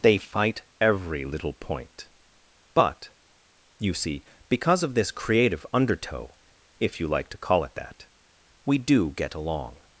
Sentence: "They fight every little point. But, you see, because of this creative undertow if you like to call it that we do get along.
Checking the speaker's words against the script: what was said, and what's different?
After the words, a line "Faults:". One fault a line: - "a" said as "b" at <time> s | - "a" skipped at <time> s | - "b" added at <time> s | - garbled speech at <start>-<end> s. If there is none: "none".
"They fight every little point. But, you see, because of this creative undertow if you like to call it that we do get along.
Faults:
none